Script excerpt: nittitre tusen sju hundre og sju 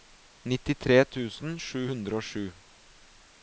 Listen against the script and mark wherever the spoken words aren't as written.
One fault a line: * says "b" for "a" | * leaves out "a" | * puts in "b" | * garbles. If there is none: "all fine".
all fine